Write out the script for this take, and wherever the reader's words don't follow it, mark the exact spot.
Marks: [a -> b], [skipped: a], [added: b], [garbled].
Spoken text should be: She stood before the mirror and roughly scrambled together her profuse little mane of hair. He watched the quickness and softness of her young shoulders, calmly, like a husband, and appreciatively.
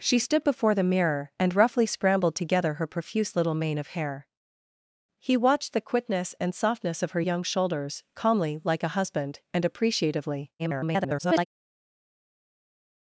She stood before the mirror and roughly scrambled together her profuse little mane of hair. He watched the quickness and softness of her young shoulders, calmly, like a husband, and appreciatively. [garbled]